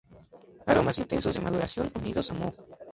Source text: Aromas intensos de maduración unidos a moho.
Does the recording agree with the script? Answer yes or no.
yes